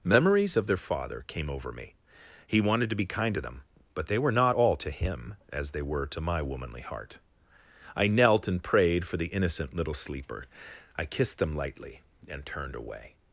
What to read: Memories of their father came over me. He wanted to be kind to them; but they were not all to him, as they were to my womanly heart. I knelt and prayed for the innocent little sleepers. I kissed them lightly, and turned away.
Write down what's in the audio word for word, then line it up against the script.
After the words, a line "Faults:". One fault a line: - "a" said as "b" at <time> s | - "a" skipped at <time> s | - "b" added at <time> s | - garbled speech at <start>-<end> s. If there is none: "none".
Memories of their father came over me. He wanted to be kind to them; but they were not all to him, as they were to my womanly heart. I knelt and prayed for the innocent little sleeper. I kissed them lightly, and turned away.
Faults:
- "sleepers" said as "sleeper" at 9.9 s